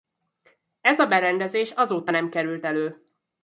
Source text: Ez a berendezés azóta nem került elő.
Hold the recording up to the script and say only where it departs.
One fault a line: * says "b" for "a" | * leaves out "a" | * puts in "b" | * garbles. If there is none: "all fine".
all fine